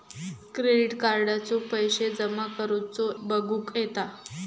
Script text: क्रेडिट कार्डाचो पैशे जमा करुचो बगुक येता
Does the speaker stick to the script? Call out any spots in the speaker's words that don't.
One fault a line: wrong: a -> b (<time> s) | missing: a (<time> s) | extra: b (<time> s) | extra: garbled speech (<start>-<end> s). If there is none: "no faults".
no faults